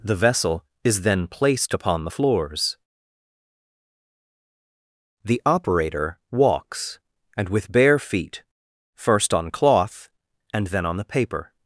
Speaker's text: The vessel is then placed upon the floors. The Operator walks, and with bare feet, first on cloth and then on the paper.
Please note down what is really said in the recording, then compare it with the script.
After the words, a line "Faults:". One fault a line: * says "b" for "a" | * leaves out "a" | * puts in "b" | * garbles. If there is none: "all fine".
The vessel is then placed upon the floors. The Operator walks, and with bare feet, first on cloth and then on the paper.
Faults:
all fine